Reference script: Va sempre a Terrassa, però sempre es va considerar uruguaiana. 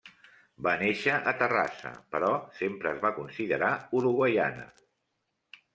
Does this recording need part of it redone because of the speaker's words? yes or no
yes